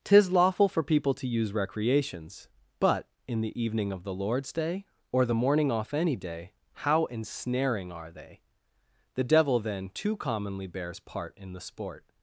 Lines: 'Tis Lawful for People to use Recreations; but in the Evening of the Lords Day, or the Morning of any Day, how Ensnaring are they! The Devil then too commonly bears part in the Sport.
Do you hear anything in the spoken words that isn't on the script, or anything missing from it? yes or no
yes